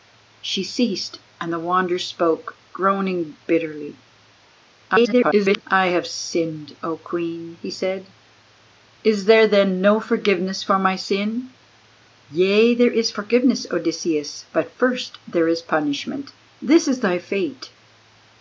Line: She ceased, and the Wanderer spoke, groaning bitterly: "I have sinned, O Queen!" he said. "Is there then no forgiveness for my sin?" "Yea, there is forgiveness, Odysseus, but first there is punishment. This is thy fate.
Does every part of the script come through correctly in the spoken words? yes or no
no